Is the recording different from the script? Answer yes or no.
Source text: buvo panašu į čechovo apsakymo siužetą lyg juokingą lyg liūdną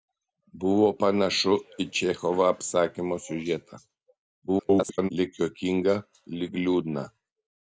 yes